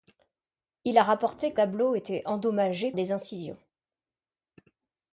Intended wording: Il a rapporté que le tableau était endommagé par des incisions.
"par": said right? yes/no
no